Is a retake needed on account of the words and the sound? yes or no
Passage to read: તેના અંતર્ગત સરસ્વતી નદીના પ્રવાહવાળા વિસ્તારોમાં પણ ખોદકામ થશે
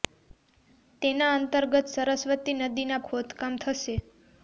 yes